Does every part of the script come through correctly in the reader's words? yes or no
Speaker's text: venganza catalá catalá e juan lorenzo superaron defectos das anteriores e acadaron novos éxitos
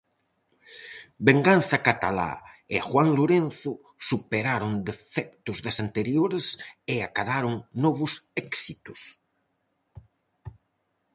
no